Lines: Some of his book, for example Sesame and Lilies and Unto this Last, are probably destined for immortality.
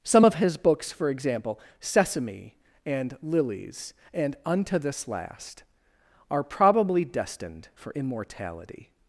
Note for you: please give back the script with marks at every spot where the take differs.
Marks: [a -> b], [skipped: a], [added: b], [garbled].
Some of his [book, -> books] for example Sesame and Lilies and Unto this Last, are probably destined for immortality.